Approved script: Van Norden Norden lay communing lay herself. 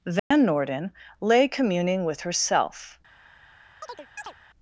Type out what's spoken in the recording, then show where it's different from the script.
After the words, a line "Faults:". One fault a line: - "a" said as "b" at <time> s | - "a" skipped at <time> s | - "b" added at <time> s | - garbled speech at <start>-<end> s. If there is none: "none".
Van Norden lay communing with herself.
Faults:
- "Norden" skipped at 0.9 s
- "lay" said as "with" at 2.0 s